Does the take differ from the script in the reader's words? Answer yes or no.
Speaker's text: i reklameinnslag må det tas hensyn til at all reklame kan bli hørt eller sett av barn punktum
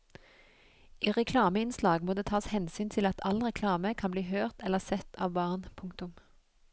no